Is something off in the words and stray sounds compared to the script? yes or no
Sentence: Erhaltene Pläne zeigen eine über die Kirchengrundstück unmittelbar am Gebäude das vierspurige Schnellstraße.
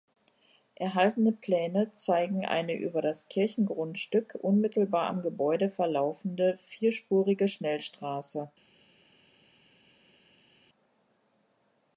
yes